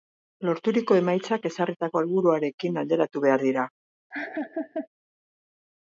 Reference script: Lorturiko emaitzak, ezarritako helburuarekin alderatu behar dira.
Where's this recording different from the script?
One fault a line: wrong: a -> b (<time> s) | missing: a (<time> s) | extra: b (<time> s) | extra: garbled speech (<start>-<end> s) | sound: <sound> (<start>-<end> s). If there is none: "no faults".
sound: laugh (4.1-4.9 s)